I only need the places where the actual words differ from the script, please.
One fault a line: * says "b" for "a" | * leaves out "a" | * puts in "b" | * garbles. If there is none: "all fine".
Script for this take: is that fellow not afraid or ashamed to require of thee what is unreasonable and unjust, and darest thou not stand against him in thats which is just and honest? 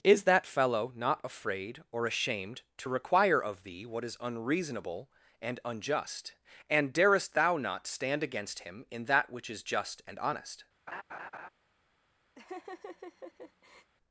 * says "that" for "thats"